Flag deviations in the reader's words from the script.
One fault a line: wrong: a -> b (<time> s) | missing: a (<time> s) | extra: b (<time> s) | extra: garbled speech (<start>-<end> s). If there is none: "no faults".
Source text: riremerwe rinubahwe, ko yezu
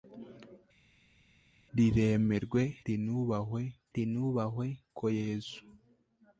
extra: rinubahwe (3.9 s)